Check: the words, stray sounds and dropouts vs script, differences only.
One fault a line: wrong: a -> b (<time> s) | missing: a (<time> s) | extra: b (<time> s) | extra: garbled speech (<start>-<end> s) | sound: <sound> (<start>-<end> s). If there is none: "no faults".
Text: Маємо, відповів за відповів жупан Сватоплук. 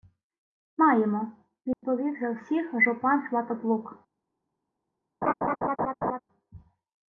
sound: dropout (1.7-1.8 s)
wrong: відповів -> всіх (2.3 s)
sound: laugh (5.2-6.2 s)